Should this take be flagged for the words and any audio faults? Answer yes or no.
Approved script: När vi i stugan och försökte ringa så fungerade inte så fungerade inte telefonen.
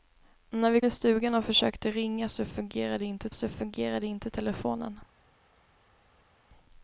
no